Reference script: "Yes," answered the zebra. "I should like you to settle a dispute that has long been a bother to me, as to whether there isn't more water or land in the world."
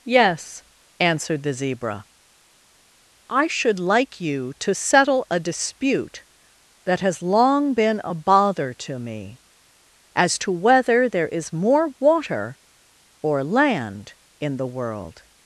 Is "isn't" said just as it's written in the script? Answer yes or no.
no